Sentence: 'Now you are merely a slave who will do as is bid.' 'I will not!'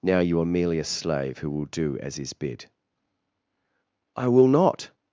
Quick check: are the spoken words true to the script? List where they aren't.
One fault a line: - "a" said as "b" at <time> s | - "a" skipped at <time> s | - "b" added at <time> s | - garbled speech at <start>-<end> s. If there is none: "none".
none